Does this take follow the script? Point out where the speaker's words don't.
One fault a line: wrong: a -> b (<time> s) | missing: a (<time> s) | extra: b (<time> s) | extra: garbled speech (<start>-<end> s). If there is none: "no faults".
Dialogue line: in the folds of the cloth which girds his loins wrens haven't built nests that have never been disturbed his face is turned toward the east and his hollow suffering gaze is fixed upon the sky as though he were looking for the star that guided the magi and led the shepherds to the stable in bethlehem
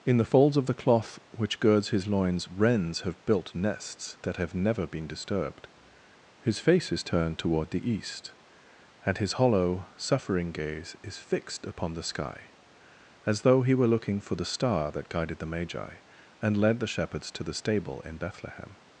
wrong: haven't -> have (3.0 s)